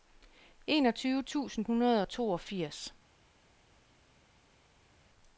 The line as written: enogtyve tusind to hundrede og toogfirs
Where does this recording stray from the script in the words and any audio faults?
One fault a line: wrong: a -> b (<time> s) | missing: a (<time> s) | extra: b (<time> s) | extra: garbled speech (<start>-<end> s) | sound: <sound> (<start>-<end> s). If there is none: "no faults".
missing: to (1.6 s)